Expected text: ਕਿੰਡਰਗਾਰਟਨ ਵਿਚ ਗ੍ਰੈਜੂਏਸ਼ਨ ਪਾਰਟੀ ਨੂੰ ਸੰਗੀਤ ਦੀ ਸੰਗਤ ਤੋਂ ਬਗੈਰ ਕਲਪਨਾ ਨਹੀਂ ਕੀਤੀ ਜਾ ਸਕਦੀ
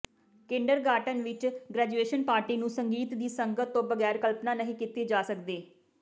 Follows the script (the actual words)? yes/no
yes